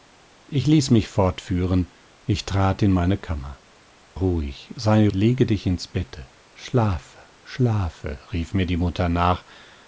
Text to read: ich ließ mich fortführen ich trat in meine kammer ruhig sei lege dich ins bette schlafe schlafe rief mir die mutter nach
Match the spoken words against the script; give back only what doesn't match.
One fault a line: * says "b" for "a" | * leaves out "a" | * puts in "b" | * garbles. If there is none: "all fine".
all fine